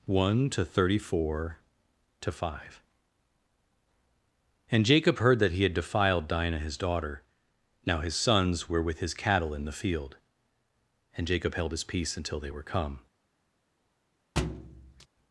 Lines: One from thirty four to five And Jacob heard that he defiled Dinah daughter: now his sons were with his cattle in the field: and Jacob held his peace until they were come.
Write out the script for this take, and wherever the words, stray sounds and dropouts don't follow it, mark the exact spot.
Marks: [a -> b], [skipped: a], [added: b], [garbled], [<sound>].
One [from -> to] thirty four to five And Jacob heard that he [added: had] defiled Dinah [added: his] daughter: now his sons were with his cattle in the field: and Jacob held his peace until they were come. [thud]